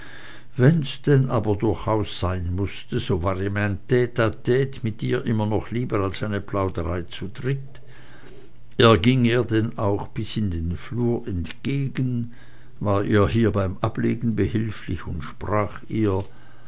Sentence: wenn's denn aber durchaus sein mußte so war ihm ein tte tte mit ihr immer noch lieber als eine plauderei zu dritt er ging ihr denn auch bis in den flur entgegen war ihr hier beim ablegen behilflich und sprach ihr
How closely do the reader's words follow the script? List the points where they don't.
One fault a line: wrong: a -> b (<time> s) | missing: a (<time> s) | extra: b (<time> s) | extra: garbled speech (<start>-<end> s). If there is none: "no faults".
no faults